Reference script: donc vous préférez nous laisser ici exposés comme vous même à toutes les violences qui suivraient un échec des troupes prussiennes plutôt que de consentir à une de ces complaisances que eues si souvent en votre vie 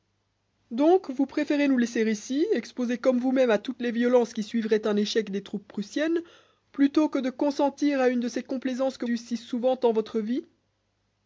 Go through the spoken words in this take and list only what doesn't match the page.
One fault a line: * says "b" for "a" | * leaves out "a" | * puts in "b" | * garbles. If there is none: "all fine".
all fine